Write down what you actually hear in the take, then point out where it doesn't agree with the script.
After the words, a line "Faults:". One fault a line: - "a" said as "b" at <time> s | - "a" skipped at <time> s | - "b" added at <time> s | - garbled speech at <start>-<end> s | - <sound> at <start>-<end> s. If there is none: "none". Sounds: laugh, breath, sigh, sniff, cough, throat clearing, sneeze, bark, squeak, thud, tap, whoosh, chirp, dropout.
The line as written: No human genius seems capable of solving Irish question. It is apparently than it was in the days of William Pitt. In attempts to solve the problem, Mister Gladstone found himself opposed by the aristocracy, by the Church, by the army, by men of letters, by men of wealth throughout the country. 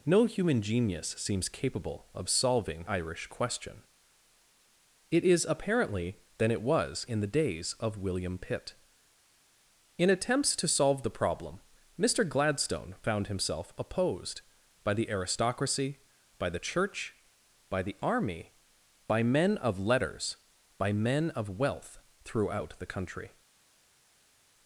No human genius seems capable of solving Irish question. It is apparently than it was in the days of William Pitt. In attempts to solve the problem, Mister Gladstone found himself opposed by the aristocracy, by the Church, by the army, by men of letters, by men of wealth throughout the country.
Faults:
none